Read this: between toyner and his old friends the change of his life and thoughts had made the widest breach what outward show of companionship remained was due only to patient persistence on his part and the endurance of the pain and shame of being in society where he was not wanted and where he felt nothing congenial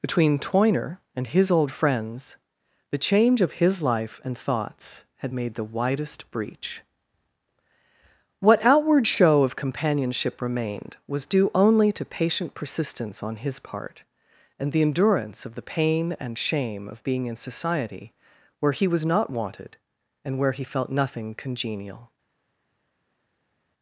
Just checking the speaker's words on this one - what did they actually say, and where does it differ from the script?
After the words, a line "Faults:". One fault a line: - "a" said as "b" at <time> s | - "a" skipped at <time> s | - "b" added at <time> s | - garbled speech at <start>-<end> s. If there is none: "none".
between toyner and his old friends the change of his life and thoughts had made the widest breach what outward show of companionship remained was due only to patient persistence on his part and the endurance of the pain and shame of being in society where he was not wanted and where he felt nothing congenial
Faults:
none